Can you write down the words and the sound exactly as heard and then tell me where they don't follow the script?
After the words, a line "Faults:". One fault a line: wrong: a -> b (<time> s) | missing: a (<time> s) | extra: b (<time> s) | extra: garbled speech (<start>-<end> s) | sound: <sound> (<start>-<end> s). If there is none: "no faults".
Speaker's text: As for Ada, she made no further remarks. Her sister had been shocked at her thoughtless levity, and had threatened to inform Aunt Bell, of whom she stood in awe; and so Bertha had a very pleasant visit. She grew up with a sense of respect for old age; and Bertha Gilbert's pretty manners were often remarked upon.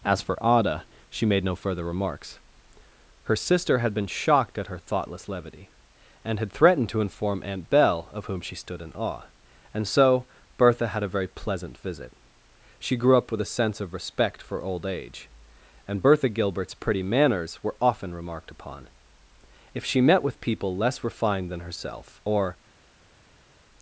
As for Ada, she made no further remarks. Her sister had been shocked at her thoughtless levity, and had threatened to inform Aunt Bell, of whom she stood in awe; and so Bertha had a very pleasant visit. She grew up with a sense of respect for old age; and Bertha Gilbert's pretty manners were often remarked upon. If she met with people less refined than herself, or
Faults:
extra: If she met with people less refined than herself or (19.7 s)